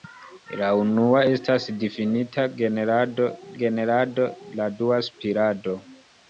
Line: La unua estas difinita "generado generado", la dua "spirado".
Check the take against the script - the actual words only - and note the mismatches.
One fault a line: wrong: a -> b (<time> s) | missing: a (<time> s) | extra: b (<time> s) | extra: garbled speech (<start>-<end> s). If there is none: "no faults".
no faults